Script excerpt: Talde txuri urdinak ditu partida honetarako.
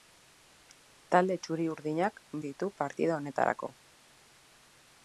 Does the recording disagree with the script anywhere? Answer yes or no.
no